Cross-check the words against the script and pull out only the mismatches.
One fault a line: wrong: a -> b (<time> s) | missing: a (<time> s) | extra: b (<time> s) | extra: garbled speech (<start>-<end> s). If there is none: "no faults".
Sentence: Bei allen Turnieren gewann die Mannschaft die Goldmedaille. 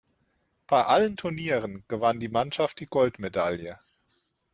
no faults